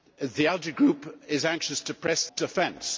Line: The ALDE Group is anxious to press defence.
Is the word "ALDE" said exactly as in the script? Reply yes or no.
yes